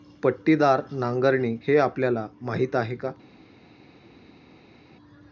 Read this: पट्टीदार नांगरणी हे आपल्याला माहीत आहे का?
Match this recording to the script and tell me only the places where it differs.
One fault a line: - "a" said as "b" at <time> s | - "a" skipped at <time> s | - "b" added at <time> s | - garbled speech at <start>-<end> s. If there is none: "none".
none